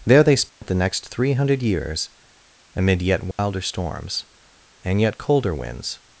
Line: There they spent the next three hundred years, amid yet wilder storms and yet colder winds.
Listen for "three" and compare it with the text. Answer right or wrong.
right